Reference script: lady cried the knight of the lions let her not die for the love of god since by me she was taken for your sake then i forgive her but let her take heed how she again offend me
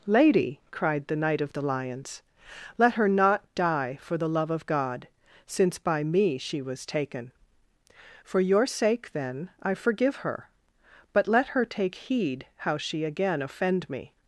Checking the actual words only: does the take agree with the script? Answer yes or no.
yes